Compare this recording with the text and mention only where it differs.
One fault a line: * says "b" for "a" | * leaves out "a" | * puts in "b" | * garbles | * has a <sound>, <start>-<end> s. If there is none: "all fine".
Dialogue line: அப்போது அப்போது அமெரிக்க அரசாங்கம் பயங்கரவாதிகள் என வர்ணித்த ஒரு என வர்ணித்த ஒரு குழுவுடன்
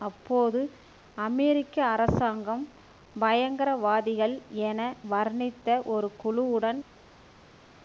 * leaves out "அப்போது"
* leaves out "என வர்ணித்த ஒரு"